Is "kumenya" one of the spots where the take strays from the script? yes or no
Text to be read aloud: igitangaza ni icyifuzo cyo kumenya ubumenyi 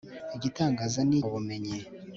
yes